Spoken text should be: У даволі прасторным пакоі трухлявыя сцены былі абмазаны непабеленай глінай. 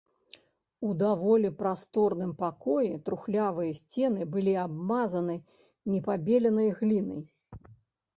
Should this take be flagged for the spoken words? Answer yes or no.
no